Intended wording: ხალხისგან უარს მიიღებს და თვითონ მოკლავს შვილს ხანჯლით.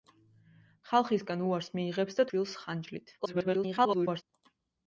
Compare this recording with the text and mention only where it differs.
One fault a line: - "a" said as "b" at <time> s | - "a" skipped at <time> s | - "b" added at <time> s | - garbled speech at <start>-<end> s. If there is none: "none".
- "თვითონ მოკლავს" skipped at 2.2 s
- garbled speech at 3.2-4.2 s